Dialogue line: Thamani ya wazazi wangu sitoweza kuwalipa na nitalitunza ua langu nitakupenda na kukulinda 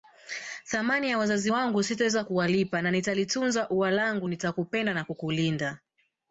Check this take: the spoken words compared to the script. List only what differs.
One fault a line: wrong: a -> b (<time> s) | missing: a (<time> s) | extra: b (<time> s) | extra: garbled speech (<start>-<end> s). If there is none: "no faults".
no faults